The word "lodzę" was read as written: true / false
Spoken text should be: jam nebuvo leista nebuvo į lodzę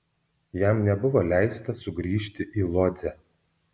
true